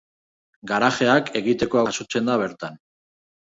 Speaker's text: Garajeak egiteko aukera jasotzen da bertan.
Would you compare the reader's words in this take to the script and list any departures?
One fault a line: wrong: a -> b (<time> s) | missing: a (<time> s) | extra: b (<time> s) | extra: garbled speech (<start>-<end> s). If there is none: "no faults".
missing: aukera (1.8 s)